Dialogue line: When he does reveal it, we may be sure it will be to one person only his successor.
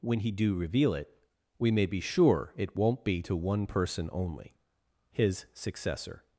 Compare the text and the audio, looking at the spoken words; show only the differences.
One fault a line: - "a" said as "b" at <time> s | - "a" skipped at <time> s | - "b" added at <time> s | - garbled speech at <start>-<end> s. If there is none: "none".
- "does" said as "do" at 0.3 s
- "will" said as "won't" at 2.7 s